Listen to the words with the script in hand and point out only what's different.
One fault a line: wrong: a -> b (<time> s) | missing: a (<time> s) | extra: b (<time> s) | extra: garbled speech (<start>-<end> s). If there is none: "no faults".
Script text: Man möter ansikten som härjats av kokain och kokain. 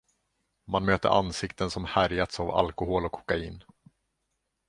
wrong: kokain -> alkohol (2.5 s)